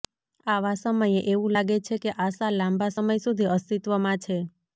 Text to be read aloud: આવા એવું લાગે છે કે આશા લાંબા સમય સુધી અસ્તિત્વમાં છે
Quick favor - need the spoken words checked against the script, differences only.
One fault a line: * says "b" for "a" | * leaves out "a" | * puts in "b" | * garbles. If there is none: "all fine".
* puts in "સમયે"